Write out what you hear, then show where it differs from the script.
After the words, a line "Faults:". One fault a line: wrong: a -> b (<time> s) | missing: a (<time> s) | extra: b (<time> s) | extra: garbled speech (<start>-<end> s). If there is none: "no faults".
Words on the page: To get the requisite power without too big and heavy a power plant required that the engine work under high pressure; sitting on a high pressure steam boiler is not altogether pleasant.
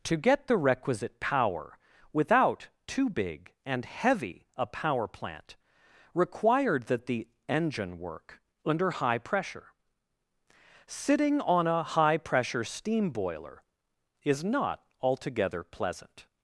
To get the requisite power without too big and heavy a power plant required that the engine work under high pressure; sitting on a high pressure steam boiler is not altogether pleasant.
Faults:
no faults